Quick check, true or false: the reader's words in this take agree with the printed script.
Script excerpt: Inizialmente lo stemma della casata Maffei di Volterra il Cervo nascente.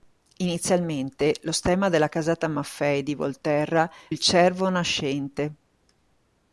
true